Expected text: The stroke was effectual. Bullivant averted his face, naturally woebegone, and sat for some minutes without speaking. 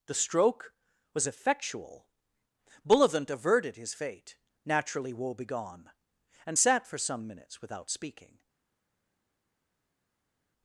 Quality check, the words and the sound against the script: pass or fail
fail